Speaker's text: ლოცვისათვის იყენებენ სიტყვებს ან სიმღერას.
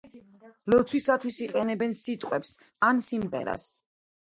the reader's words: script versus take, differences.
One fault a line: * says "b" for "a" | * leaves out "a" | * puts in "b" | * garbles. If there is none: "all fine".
all fine